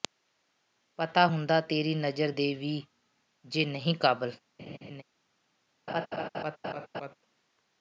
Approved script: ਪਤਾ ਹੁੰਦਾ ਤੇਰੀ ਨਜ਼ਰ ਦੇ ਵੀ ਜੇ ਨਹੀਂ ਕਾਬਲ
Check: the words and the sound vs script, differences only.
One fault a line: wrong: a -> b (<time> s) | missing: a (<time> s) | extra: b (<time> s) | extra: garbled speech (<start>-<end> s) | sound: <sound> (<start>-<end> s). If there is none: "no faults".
sound: laugh (4.6-5.0 s)
sound: laugh (5.9-7.1 s)